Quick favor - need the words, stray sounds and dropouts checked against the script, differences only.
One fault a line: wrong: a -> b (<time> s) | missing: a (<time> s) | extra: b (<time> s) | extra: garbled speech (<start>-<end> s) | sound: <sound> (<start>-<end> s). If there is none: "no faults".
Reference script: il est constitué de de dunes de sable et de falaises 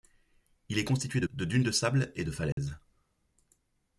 sound: dropout (2.5-2.6 s)